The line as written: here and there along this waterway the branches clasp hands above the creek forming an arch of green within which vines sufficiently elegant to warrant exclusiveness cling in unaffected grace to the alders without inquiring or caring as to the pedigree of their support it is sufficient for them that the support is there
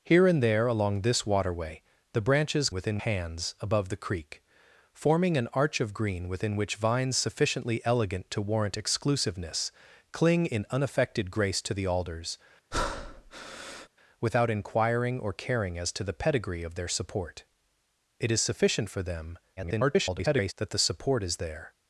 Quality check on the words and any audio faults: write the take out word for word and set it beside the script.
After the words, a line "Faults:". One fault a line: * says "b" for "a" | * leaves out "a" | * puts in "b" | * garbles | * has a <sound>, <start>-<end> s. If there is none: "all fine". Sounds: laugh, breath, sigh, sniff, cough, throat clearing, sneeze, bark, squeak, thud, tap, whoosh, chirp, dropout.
here and there along this waterway the branches within hands above the creek forming an arch of green within which vines sufficiently elegant to warrant exclusiveness cling in unaffected grace to the alders without inquiring or caring as to the pedigree of their support it is sufficient for them [garbled] that the support is there
Faults:
* says "within" for "clasp"
* has a breath, 12.7-13.9 s
* garbles